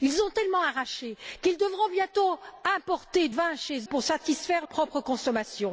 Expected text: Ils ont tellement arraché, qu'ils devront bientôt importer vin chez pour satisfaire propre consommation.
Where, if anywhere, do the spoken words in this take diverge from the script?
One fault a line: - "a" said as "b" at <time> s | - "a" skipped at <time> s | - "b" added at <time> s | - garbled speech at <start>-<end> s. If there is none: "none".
none